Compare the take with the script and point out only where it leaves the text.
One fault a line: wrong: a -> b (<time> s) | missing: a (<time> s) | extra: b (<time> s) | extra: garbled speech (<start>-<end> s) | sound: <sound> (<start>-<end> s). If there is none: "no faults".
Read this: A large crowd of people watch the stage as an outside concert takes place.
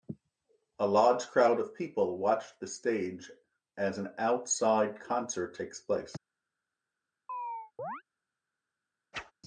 sound: chirp (7.3-8.0 s)
sound: whoosh (9.1-9.3 s)